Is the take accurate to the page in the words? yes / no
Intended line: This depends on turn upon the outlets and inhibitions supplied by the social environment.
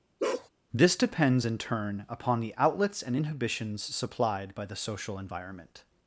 no